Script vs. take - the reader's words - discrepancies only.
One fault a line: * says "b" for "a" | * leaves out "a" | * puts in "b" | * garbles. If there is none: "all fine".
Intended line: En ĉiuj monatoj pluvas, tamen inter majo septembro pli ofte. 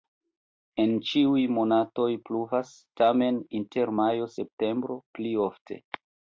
all fine